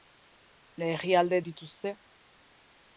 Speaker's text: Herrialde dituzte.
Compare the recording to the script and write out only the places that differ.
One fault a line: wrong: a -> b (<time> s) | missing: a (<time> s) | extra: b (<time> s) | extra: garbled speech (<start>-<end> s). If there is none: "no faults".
no faults